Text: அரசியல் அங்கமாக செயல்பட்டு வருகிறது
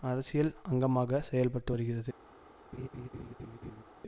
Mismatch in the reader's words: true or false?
false